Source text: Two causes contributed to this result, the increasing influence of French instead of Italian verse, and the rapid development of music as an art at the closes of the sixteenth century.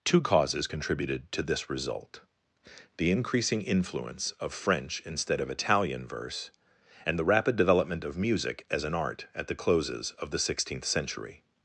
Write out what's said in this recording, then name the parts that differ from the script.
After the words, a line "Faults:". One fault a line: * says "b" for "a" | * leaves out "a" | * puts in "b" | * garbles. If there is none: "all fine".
Two causes contributed to this result, the increasing influence of French instead of Italian verse, and the rapid development of music as an art at the closes of the sixteenth century.
Faults:
all fine